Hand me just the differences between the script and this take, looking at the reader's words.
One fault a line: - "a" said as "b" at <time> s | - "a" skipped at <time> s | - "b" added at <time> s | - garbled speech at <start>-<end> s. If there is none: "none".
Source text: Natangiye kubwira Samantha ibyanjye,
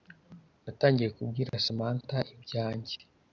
none